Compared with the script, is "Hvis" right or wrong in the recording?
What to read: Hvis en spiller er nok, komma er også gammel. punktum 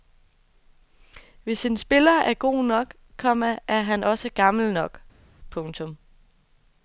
right